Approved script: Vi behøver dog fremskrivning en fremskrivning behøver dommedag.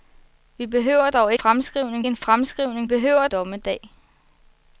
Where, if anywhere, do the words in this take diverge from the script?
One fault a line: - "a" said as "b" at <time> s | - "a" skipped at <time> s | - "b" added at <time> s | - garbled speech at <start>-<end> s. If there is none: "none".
none